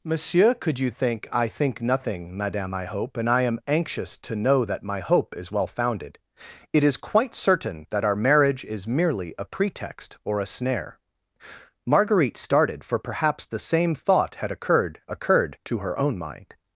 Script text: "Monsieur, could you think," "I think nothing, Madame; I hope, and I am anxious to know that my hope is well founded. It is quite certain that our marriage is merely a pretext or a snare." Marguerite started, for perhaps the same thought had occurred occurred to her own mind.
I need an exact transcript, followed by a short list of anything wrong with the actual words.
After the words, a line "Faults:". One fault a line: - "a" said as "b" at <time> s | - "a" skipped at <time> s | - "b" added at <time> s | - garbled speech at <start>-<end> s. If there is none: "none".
"Monsieur, could you think," "I think nothing, Madame; I hope, and I am anxious to know that my hope is well founded. It is quite certain that our marriage is merely a pretext or a snare." Marguerite started, for perhaps the same thought had occurred occurred to her own mind.
Faults:
none